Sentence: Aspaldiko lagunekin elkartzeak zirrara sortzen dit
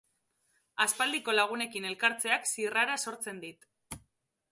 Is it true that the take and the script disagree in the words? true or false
false